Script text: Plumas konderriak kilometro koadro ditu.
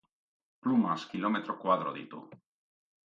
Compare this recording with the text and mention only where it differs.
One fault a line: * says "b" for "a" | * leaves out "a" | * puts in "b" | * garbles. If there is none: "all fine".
* leaves out "konderriak"